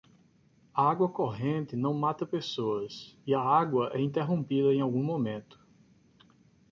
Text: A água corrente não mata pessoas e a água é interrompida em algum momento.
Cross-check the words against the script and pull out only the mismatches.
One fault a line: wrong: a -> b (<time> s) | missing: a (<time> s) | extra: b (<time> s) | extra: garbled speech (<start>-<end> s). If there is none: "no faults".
no faults